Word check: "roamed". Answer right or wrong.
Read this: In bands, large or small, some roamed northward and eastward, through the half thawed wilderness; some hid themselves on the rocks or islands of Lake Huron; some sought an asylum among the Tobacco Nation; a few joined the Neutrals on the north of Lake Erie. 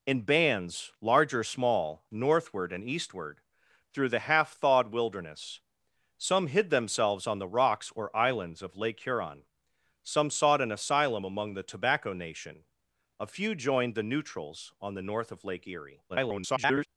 wrong